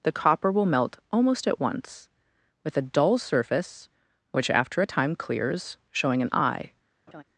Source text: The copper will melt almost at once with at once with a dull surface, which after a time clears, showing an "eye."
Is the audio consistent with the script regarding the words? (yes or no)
no